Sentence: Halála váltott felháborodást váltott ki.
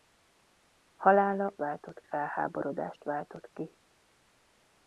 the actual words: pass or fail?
pass